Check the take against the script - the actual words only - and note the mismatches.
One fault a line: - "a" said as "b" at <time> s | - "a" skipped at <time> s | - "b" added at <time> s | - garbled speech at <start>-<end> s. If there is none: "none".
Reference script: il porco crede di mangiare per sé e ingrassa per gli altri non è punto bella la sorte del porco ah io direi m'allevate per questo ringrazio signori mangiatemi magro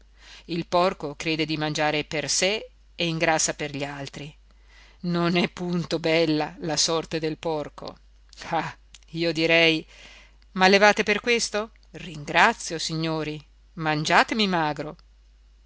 none